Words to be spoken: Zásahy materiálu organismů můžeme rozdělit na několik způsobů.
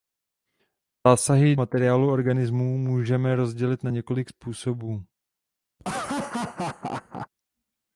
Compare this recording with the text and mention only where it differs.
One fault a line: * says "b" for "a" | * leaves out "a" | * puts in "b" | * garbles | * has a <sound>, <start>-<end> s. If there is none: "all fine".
* has a laugh, 5.8-7.3 s